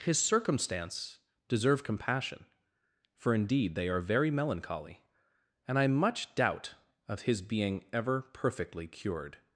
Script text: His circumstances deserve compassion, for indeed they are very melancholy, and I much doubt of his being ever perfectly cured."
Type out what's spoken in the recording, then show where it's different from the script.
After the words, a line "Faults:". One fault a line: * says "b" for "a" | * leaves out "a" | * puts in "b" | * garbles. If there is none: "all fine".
His circumstance deserve compassion, for indeed they are very melancholy, and I much doubt of his being ever perfectly cured."
Faults:
* says "circumstance" for "circumstances"